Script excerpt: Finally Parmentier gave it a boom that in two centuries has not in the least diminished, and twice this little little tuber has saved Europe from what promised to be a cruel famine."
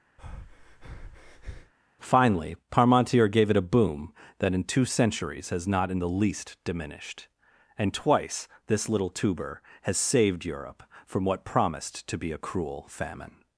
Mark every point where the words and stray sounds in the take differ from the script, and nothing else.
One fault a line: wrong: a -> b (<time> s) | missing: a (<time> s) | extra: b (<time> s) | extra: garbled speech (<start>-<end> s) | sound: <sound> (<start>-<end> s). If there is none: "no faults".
sound: breath (0.2-1.7 s)
missing: little (9.1 s)